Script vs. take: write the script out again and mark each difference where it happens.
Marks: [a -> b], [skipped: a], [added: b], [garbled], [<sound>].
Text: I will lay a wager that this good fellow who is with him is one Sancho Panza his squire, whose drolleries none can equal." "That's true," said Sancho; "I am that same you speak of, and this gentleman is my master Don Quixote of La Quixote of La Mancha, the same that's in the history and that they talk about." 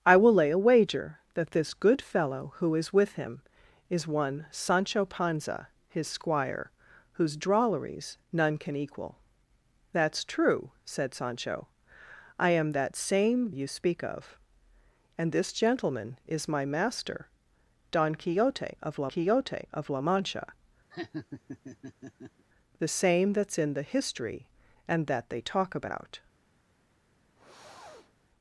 I will lay a wager that this good fellow who is with him is one Sancho Panza his squire, whose drolleries none can equal." "That's true," said Sancho; "I am that same you speak of, and this gentleman is my master Don Quixote of La Quixote of La Mancha, [laugh] the same that's in the history and that they talk about." [sniff]